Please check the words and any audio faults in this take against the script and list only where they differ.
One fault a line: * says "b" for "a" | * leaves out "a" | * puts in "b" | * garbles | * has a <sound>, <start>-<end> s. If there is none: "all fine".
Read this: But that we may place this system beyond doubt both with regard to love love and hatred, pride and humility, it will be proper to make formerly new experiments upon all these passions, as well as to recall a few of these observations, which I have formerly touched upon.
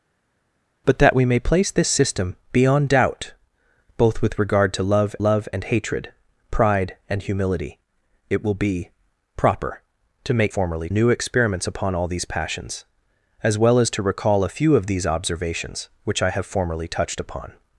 all fine